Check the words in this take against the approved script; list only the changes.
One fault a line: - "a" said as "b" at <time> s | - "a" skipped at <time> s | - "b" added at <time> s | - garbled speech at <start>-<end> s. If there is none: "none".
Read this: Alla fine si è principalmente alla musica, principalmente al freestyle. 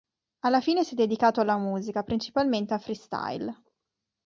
- "principalmente" said as "dedicato" at 0.9 s